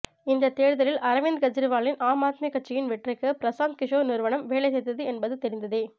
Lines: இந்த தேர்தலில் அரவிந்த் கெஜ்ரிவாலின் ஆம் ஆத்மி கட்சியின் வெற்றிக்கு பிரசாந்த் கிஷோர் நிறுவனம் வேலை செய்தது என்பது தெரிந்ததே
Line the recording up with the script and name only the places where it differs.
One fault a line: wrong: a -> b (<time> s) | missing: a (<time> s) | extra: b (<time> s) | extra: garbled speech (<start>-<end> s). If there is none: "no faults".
no faults